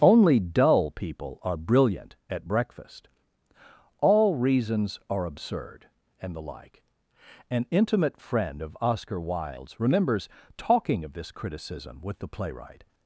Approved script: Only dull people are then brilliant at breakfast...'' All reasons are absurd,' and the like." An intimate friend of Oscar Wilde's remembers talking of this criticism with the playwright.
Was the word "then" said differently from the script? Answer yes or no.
yes